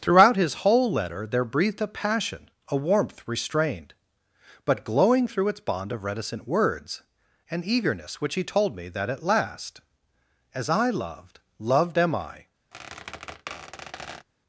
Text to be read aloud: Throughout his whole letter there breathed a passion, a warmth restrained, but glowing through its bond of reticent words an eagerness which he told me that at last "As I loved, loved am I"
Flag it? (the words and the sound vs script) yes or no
yes